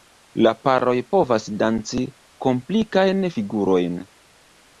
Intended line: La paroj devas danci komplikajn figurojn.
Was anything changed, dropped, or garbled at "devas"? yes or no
yes